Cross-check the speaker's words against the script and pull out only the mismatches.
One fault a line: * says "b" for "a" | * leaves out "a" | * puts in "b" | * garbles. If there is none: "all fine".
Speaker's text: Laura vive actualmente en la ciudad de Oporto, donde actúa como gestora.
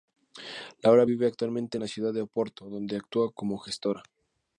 all fine